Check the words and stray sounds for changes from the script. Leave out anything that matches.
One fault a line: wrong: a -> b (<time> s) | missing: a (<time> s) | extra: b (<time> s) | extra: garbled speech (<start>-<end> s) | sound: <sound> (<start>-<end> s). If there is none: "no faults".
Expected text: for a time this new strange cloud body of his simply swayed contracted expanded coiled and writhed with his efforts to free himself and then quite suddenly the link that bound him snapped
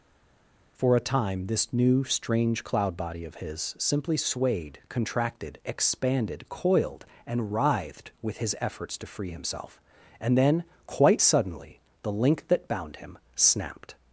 no faults